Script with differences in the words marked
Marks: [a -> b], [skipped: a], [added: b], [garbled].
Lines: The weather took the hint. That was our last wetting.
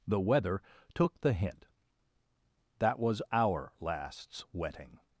The weather took the hint. That was our [last -> lasts] wetting.